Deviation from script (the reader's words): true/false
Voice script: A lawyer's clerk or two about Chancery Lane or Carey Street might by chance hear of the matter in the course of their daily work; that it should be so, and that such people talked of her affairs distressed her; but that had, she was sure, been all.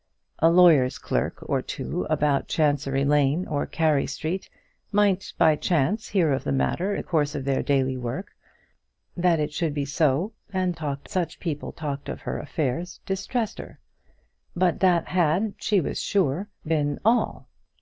true